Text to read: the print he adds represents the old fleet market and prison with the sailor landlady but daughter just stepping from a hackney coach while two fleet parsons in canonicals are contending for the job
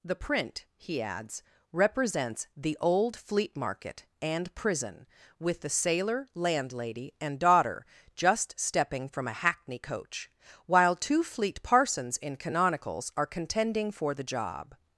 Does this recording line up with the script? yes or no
no